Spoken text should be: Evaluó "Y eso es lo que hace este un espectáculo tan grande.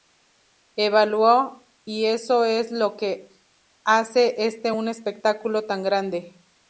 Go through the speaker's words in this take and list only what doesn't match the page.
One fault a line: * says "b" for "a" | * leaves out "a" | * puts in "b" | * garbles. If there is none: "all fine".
all fine